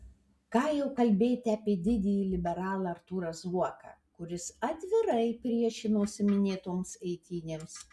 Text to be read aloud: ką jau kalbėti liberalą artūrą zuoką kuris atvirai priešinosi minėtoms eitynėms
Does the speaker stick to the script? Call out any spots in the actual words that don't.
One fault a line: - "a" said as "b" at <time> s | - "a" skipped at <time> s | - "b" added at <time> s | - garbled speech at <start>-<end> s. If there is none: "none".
- "apie didįjį" added at 1.5 s